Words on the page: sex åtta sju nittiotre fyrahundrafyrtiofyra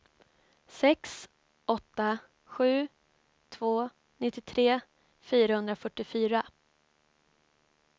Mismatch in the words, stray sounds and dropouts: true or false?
true